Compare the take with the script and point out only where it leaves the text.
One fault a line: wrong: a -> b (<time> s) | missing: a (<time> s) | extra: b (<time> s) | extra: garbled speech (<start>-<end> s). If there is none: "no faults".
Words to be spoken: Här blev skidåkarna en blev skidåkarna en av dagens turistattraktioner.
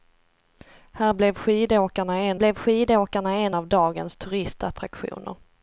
no faults